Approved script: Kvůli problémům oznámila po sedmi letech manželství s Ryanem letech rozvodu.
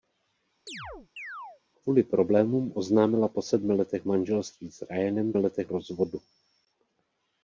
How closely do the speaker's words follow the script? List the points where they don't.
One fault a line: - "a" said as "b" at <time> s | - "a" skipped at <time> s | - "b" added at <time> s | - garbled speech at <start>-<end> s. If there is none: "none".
none